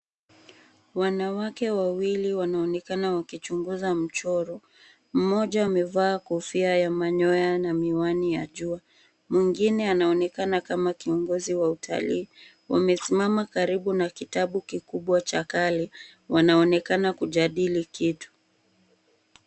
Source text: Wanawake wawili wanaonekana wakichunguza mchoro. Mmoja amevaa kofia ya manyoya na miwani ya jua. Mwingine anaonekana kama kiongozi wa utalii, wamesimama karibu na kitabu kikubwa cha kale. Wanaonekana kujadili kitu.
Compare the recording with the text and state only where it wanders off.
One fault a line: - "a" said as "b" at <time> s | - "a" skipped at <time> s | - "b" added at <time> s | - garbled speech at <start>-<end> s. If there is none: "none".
none